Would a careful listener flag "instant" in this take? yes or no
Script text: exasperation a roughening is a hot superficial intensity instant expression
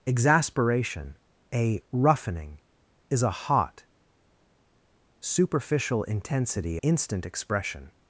no